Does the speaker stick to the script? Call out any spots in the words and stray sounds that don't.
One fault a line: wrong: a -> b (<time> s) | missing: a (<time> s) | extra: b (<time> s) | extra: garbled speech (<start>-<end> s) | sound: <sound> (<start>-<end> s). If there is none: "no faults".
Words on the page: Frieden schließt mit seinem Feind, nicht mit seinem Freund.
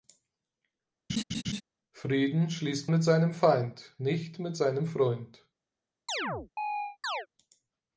sound: laugh (1.1-1.6 s)
sound: chirp (6.1-7.3 s)